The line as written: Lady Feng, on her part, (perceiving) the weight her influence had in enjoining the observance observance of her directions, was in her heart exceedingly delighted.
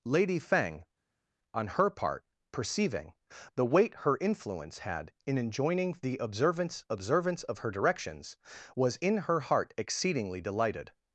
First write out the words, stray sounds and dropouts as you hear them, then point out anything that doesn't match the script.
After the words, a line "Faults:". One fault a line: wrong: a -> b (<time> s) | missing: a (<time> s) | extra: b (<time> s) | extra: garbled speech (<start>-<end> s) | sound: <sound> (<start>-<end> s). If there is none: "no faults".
Lady Feng, on her part, (perceiving) the weight her influence had in enjoining the observance observance of her directions, was in her heart exceedingly delighted.
Faults:
no faults